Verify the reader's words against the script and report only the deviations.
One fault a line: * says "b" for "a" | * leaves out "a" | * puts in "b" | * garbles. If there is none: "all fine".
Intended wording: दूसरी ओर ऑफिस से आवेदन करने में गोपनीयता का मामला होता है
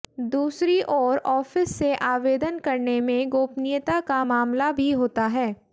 * puts in "भी"